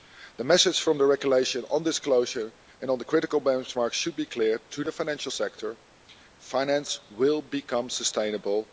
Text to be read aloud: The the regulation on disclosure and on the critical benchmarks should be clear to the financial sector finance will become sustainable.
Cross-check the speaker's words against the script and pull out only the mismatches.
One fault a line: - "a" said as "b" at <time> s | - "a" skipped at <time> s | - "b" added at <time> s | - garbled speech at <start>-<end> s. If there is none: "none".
- "message from" added at 0.4 s